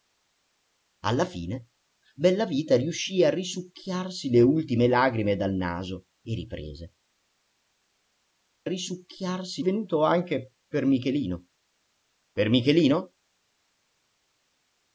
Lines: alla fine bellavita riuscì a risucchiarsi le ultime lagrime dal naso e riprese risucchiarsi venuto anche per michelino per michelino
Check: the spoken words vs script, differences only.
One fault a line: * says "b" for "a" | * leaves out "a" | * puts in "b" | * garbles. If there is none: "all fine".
all fine